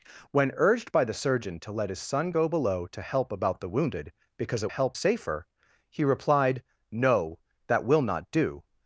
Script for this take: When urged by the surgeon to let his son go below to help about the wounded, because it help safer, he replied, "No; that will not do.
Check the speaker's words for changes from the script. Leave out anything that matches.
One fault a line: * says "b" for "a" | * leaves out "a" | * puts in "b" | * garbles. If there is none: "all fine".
all fine